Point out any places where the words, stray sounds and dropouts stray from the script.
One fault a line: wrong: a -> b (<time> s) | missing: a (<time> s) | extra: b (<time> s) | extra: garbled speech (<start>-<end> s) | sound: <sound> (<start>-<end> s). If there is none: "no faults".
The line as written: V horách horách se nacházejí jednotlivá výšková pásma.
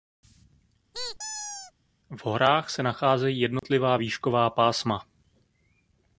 sound: squeak (0.9-1.7 s)
missing: horách (2.7 s)
sound: dropout (3.6-3.6 s)